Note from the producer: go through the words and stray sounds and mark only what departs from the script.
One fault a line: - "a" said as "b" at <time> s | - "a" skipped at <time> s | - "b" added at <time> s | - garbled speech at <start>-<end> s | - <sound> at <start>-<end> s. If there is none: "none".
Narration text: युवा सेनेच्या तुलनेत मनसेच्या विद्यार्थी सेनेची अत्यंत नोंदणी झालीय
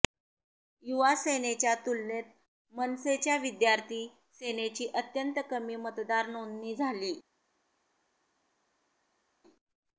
- "कमी मतदार" added at 5.5 s